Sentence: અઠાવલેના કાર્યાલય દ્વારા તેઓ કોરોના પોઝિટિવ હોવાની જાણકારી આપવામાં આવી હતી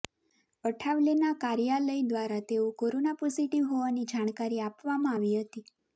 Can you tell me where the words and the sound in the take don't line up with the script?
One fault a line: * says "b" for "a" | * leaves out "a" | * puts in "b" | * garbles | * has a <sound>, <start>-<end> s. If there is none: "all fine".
all fine